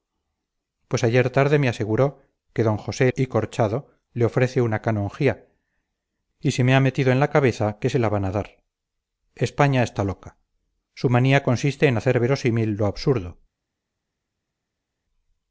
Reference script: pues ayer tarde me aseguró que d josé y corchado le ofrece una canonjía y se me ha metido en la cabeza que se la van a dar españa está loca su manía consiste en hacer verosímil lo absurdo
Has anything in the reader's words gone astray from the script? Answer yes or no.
no